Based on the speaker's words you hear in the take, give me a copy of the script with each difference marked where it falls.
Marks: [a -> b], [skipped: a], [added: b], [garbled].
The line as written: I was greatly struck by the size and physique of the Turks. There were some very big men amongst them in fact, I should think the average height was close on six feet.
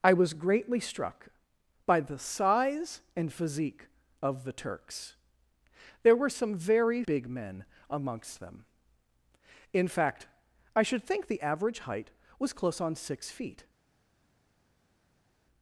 I was greatly struck by the size and physique of the Turks. There were some very big men amongst them in fact, I should think the average height was close on six feet.